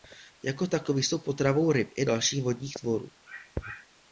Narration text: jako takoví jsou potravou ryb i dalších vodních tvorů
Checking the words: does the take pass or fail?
pass